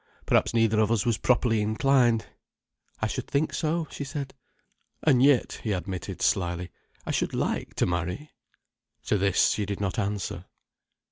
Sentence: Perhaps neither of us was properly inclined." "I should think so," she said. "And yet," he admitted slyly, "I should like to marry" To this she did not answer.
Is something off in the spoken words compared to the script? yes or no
no